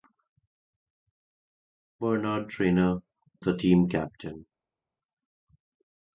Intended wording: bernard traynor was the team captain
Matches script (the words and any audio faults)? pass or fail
fail